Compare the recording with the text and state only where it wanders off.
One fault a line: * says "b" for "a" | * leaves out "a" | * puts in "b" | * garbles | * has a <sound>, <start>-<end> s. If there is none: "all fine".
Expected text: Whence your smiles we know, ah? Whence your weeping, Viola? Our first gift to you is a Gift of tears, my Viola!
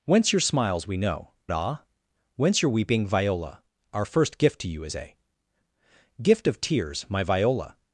all fine